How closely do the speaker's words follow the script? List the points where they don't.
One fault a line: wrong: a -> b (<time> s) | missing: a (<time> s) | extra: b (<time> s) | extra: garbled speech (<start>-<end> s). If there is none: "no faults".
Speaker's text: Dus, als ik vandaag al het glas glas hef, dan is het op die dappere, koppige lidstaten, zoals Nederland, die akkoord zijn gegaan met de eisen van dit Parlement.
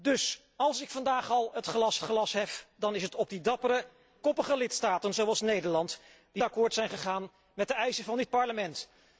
no faults